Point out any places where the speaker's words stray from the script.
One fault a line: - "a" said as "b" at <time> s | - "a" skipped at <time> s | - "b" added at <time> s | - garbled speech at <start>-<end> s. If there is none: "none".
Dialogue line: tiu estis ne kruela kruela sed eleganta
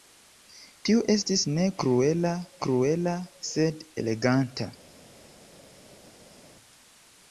none